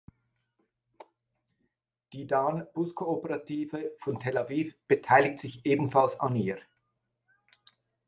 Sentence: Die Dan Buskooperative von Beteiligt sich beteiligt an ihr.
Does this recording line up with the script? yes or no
no